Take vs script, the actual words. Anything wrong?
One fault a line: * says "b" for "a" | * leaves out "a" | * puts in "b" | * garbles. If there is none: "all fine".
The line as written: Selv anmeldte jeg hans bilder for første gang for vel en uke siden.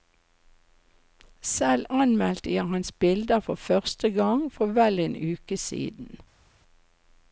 all fine